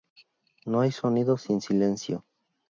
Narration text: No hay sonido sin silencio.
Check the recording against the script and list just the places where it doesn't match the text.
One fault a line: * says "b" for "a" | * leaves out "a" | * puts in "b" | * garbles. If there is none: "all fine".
all fine